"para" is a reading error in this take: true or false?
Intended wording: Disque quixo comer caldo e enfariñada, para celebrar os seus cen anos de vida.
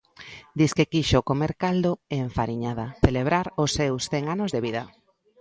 true